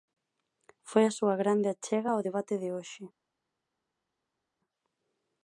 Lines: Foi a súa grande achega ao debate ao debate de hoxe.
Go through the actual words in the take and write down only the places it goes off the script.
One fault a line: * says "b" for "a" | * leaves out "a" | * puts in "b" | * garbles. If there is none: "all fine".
* leaves out "ao debate"